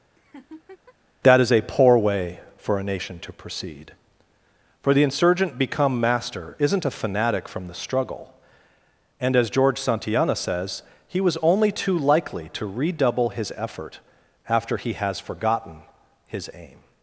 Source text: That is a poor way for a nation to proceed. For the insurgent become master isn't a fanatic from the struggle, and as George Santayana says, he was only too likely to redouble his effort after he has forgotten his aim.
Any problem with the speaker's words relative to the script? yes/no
no